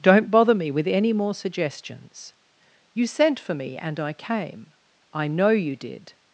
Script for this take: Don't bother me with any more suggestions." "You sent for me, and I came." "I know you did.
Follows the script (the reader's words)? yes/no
yes